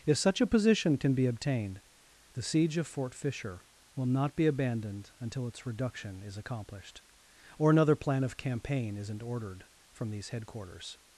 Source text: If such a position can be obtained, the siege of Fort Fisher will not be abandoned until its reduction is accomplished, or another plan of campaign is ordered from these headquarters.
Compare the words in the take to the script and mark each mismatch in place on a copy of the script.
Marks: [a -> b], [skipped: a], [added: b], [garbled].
If such a position can be obtained, the siege of Fort Fisher will not be abandoned until its reduction is accomplished, or another plan of campaign [is -> isn't] ordered from these headquarters.